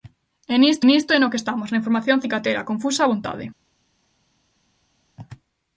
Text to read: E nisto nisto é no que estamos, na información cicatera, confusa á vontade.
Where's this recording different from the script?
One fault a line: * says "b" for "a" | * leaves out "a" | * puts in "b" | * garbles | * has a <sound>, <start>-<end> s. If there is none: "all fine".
all fine